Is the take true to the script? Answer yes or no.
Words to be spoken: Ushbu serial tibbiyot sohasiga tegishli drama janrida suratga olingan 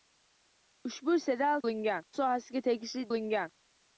no